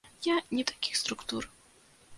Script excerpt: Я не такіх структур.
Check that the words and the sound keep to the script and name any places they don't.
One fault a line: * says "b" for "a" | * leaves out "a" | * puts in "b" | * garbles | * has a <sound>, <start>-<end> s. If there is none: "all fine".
all fine